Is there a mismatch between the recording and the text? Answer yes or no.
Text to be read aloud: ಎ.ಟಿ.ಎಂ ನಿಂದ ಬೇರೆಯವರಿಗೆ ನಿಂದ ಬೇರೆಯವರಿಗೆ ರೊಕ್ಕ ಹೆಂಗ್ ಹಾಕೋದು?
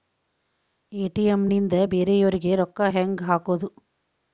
yes